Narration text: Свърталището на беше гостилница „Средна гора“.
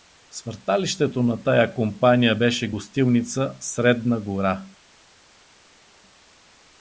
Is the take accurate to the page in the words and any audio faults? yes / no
no